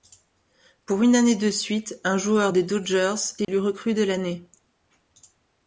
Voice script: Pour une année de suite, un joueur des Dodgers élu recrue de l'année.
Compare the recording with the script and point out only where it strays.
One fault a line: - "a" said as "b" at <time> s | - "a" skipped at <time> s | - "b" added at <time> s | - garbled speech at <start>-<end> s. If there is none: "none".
none